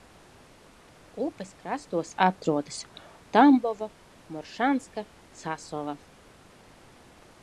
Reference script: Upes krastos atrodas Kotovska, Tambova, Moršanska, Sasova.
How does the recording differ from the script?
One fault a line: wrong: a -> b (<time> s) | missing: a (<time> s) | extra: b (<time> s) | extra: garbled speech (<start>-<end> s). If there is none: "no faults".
missing: Kotovska (2.8 s)